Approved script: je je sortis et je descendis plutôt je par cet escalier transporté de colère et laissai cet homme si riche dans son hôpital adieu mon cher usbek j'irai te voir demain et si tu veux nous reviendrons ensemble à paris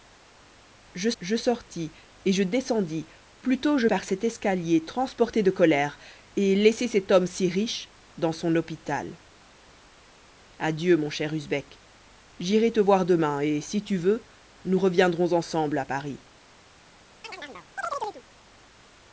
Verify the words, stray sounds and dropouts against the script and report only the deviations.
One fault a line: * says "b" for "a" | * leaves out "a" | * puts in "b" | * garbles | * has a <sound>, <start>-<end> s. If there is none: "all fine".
* has a chirp, 17.2-18.2 s